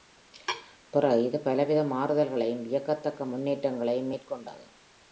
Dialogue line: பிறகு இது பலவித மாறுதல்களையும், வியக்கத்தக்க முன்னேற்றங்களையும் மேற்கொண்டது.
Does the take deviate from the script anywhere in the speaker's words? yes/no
no